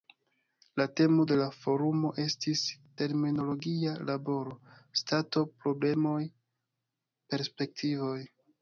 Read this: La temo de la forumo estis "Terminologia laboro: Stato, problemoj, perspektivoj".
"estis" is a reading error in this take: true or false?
false